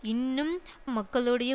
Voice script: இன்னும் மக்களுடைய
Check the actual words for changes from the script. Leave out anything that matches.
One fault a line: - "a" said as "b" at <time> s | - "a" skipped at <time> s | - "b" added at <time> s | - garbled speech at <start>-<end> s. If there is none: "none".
none